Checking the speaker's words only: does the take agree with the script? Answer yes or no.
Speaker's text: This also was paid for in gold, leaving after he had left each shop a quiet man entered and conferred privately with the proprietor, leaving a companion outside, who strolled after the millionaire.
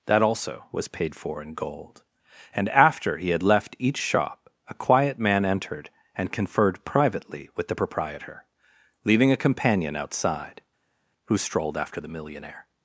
no